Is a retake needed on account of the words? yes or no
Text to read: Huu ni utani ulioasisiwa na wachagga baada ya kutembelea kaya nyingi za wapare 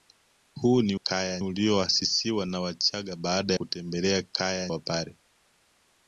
yes